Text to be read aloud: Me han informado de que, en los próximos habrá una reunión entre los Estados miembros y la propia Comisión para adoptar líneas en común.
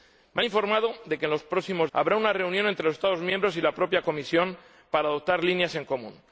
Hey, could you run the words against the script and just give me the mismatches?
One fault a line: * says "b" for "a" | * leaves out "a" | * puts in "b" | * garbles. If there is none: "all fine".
all fine